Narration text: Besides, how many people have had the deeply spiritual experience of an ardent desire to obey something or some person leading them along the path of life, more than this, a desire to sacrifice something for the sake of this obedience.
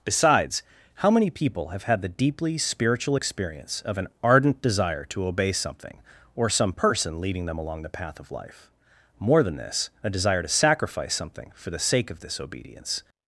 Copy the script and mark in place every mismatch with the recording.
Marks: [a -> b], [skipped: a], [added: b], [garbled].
Besides, how many people have had the deeply spiritual experience of an ardent desire to obey something or some person leading them along the path of life, more than this, a desire to sacrifice something for the sake of this obedience.